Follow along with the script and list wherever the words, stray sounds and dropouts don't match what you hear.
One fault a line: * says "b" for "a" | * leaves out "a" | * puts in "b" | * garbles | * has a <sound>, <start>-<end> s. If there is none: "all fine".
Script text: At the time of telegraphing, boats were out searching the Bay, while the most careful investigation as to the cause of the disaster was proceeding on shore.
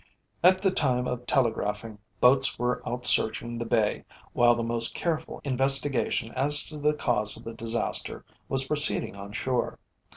all fine